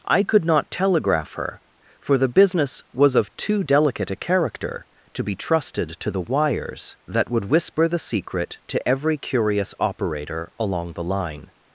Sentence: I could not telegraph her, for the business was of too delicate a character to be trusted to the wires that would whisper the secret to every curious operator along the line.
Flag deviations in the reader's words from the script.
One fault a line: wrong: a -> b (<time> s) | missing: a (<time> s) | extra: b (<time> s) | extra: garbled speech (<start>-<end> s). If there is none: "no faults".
no faults